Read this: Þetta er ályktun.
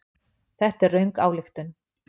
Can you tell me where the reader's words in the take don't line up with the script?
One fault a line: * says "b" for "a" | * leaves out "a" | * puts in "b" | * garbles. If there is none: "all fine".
* puts in "röng"